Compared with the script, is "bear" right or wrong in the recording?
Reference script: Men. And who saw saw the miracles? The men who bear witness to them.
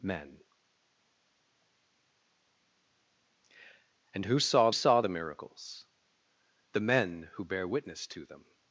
right